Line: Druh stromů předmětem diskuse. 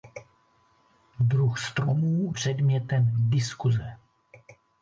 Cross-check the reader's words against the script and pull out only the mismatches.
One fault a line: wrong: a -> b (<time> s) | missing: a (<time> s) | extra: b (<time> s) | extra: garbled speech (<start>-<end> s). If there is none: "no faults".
no faults